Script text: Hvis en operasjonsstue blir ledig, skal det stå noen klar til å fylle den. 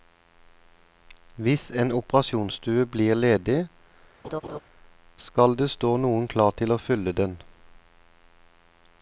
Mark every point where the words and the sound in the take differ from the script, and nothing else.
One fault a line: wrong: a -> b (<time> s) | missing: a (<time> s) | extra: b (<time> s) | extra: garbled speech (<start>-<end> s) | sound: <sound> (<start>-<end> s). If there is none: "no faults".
sound: laugh (4.2-4.6 s)